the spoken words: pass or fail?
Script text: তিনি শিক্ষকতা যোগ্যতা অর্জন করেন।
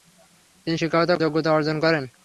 pass